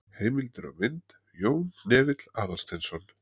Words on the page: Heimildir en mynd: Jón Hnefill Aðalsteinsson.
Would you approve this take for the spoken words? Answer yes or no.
no